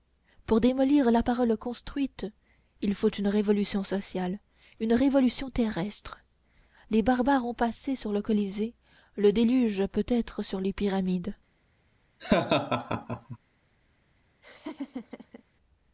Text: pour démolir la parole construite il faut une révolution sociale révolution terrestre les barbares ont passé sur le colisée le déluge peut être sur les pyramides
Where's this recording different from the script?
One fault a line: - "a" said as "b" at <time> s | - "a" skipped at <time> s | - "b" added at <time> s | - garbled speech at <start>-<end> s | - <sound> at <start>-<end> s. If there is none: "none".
- "une" added at 4.8 s
- laugh at 12.2-13.4 s
- laugh at 14.4-15.4 s